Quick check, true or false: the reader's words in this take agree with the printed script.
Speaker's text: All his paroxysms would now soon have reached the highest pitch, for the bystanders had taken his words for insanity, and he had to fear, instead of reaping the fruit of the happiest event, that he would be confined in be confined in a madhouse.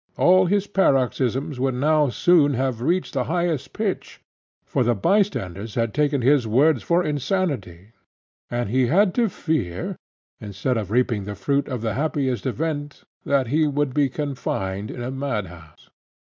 false